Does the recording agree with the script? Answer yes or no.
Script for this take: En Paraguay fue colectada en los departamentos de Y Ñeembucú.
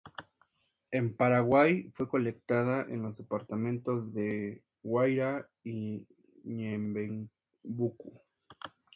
no